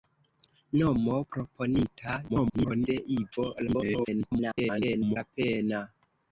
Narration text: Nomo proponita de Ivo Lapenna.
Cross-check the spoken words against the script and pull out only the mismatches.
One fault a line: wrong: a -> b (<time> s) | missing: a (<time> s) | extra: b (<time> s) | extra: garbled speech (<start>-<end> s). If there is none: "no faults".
extra: garbled speech (2.3-2.9 s)
extra: garbled speech (3.7-5.2 s)